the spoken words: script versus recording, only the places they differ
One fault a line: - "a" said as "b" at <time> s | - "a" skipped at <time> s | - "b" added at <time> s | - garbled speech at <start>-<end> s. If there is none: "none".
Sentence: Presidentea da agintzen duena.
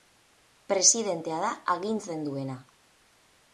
none